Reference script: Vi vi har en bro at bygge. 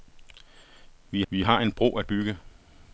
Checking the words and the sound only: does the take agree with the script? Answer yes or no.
yes